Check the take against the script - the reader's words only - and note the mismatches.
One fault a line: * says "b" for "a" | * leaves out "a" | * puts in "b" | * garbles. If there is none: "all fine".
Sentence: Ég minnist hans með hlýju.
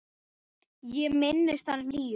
* leaves out "með"